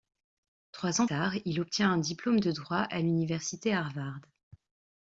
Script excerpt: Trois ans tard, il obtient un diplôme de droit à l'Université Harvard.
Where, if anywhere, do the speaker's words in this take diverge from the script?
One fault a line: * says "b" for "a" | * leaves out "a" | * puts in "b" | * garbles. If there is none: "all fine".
all fine